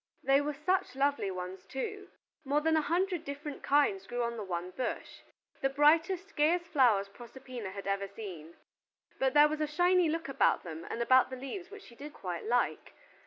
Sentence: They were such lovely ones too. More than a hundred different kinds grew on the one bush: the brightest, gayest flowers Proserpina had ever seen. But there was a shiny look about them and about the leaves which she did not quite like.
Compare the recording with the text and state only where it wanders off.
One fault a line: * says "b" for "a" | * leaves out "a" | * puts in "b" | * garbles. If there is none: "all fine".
* leaves out "not"